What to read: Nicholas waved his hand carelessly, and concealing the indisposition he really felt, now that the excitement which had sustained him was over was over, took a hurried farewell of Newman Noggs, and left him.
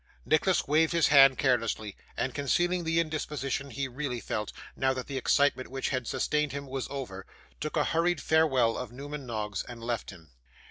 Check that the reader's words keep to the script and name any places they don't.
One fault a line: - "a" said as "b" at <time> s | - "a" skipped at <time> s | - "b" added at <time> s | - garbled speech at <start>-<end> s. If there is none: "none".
- "was over" skipped at 7.2 s